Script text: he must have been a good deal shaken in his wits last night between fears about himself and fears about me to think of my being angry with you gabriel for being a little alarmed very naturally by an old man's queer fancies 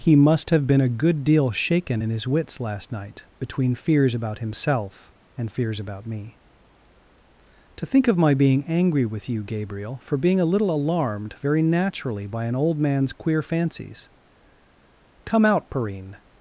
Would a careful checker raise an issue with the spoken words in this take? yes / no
yes